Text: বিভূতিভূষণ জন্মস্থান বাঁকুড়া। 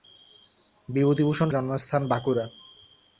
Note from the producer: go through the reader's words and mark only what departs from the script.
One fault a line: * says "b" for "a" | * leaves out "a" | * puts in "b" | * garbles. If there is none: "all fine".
all fine